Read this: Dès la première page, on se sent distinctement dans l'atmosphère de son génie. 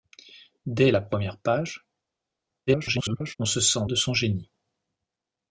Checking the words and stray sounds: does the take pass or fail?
fail